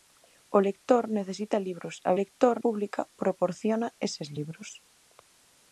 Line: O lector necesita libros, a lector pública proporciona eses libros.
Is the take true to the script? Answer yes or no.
yes